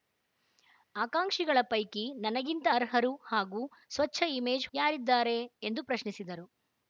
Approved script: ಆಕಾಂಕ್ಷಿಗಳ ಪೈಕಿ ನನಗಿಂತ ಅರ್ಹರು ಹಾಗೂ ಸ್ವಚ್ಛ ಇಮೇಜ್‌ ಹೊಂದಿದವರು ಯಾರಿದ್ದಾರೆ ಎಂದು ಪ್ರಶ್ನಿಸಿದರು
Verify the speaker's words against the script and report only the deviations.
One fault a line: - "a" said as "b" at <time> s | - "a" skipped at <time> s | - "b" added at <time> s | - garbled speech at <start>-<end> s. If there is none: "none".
- "ಹೊಂದಿದವರು" skipped at 4.7 s